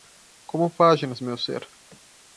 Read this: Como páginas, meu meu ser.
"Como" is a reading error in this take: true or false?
false